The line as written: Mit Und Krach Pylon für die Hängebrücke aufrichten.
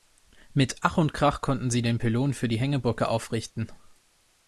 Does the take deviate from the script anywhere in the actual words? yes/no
yes